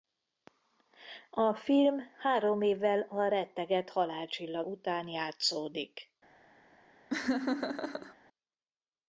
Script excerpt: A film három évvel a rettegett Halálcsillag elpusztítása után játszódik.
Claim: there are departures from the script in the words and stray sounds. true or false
true